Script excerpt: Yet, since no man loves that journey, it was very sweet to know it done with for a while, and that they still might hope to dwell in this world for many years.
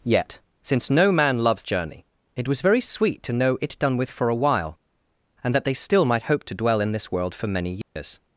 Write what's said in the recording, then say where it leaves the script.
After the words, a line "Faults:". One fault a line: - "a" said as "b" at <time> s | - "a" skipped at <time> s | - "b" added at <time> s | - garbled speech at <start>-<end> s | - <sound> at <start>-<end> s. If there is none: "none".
Yet, since no man loves journey, it was very sweet to know it done with for a while, and that they still might hope to dwell in this world for many years.
Faults:
- "that" skipped at 1.6 s
- dropout at 7.8-8.0 s